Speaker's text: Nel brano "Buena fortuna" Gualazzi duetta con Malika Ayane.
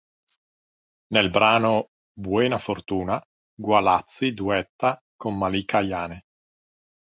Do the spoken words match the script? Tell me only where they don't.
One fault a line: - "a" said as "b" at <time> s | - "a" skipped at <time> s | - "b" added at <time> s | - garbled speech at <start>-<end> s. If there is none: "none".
none